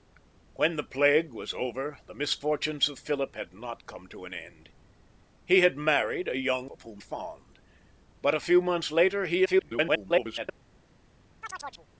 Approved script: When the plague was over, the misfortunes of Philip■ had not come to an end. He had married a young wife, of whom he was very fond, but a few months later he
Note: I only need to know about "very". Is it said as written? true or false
false